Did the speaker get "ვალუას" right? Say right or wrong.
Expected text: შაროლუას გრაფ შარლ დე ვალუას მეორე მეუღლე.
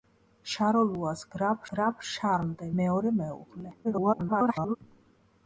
wrong